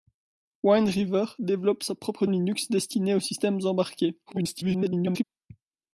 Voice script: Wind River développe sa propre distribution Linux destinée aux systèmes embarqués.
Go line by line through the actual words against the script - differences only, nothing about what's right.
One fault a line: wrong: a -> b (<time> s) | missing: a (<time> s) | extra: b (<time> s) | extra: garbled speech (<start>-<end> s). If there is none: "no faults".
missing: distribution (2.2 s)
extra: garbled speech (4.3-5.2 s)